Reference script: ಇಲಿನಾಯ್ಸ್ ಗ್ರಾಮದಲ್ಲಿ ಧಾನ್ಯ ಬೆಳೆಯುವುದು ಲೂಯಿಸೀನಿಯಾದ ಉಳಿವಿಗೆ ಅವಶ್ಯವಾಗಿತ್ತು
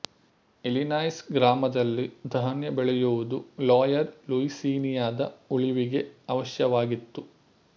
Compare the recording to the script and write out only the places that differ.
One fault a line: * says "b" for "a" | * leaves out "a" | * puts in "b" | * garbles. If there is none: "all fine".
* puts in "ಲೋಯರ್"